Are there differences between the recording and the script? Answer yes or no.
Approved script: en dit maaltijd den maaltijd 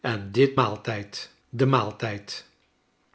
no